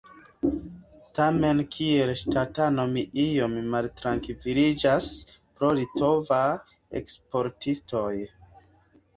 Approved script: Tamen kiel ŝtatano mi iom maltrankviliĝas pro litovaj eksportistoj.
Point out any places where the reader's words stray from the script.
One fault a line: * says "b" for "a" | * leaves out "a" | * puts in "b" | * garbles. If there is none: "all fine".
all fine